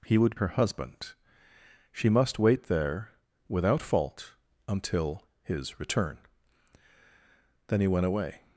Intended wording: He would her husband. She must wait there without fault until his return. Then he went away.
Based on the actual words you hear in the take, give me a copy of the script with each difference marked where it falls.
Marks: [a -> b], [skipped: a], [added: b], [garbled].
He would her husband. She must wait there without fault until his return. Then he went away.